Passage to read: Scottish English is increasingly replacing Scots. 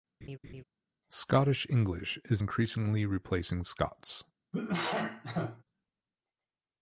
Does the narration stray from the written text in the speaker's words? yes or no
no